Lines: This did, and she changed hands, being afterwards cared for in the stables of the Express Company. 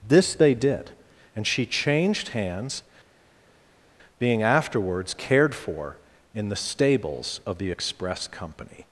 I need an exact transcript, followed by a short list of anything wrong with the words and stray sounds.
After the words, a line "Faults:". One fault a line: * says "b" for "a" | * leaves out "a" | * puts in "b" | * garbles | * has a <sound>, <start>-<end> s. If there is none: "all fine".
This they did, and she changed hands, being afterwards cared for in the stables of the Express Company.
Faults:
* puts in "they"